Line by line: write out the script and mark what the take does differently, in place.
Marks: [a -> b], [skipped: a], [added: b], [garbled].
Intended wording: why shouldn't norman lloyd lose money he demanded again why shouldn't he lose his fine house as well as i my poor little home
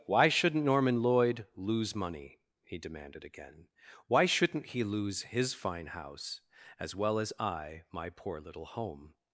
why shouldn't norman lloyd lose money he demanded again why shouldn't he lose his fine house as well as i my poor little home